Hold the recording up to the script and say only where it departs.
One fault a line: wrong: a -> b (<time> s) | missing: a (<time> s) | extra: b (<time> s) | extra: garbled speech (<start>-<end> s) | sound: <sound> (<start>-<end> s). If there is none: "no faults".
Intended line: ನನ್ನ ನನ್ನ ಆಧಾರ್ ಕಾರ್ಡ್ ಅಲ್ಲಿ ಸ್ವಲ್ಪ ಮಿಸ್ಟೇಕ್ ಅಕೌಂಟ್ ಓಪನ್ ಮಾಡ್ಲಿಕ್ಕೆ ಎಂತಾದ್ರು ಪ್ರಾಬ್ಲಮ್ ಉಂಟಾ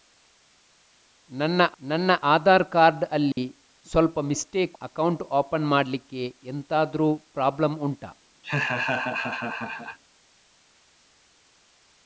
sound: dropout (3.3-3.4 s)
sound: laugh (8.4-10.0 s)